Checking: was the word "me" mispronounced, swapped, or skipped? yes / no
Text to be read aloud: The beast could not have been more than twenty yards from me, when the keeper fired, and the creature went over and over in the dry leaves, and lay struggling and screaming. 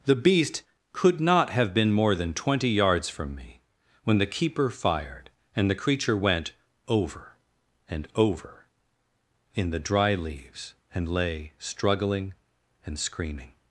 no